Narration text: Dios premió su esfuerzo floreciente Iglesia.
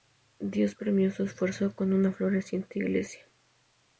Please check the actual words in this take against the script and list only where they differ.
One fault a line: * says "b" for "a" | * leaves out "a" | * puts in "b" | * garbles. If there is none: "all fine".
* puts in "con una"